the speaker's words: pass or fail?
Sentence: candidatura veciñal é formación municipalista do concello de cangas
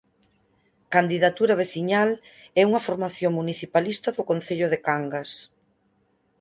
fail